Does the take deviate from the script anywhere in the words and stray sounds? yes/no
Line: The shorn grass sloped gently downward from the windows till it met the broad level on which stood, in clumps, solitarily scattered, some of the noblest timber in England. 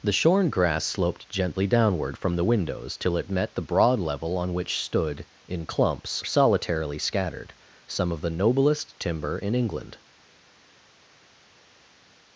no